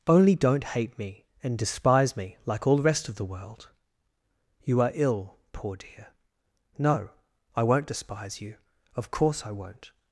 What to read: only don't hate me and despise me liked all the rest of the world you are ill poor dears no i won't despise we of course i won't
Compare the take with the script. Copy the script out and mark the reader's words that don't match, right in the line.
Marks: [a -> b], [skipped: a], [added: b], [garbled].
only don't hate me and despise me [liked -> like] all the rest of the world you are ill poor [dears -> dear] no i won't despise [we -> you] of course i won't